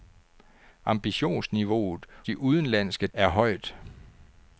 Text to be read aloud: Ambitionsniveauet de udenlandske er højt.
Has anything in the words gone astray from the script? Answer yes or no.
no